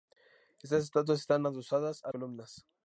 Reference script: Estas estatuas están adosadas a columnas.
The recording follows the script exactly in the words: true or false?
true